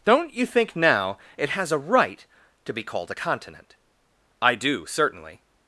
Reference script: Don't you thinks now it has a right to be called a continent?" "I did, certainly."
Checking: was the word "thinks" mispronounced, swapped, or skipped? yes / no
yes